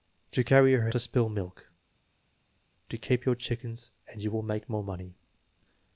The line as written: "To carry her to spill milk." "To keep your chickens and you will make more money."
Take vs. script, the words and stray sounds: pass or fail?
pass